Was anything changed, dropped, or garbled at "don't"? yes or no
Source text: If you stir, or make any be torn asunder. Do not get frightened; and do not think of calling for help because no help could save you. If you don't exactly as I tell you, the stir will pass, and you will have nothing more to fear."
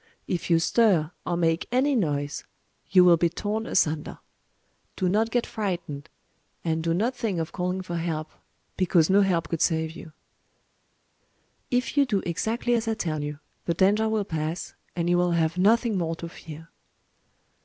yes